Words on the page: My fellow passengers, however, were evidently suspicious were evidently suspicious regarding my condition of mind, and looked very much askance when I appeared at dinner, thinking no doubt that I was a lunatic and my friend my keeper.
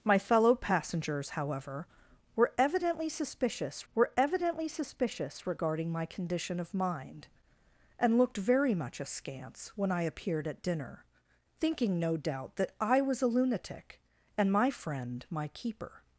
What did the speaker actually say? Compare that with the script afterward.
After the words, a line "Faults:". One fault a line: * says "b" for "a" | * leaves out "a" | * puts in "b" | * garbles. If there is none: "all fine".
My fellow passengers, however, were evidently suspicious were evidently suspicious regarding my condition of mind, and looked very much askance when I appeared at dinner, thinking no doubt that I was a lunatic and my friend my keeper.
Faults:
all fine